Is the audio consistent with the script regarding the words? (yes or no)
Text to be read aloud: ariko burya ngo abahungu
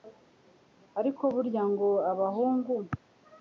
yes